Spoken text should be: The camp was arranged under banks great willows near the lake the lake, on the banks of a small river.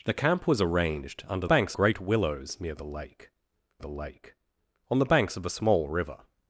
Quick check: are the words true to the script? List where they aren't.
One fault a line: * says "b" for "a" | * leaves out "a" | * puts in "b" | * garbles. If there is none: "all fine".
all fine